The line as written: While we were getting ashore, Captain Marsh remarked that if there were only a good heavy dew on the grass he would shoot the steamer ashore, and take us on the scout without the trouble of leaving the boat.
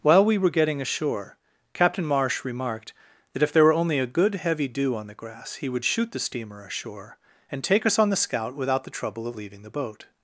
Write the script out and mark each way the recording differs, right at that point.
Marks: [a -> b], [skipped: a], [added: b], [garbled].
While we were getting ashore, Captain Marsh remarked that if there were only a good heavy dew on the grass he would shoot the steamer ashore, and take us on the scout without the trouble of leaving the boat.